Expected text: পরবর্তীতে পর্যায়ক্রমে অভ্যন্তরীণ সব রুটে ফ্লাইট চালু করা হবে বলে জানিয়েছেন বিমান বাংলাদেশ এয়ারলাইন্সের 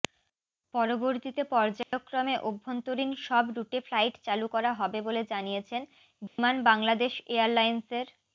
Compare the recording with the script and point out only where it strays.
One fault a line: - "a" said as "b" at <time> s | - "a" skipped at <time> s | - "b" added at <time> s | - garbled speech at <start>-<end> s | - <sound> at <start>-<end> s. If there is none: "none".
- dropout at 1.8-1.9 s
- dropout at 6.3-6.4 s